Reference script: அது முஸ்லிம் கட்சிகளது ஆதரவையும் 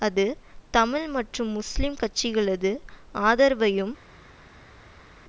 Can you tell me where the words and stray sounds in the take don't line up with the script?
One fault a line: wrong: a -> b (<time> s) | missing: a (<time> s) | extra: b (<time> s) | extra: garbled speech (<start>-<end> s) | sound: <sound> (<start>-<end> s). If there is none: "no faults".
extra: தமிழ் மற்றும் (0.7 s)